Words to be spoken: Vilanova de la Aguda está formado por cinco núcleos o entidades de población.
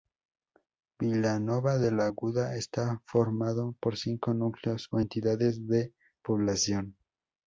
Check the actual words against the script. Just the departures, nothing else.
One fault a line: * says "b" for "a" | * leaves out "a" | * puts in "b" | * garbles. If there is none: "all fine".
all fine